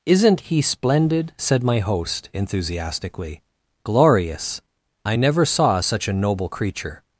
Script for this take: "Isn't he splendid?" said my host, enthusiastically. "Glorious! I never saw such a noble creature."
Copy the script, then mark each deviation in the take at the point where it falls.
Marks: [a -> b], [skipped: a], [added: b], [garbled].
"Isn't he splendid?" said my host, enthusiastically. "Glorious! I never saw such a noble creature."